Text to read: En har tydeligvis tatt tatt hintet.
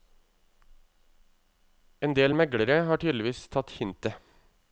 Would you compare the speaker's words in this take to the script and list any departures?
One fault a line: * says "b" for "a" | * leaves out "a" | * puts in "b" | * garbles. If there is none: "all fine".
* puts in "del meglere"
* leaves out "tatt"